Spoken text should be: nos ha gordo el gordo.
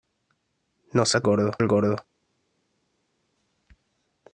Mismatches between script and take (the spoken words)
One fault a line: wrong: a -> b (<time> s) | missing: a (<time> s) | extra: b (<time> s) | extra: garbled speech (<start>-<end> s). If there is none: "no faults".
no faults